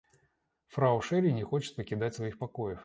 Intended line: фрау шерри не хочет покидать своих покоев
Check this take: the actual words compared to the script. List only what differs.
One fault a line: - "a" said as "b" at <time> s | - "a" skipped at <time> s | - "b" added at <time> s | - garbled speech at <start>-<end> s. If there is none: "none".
none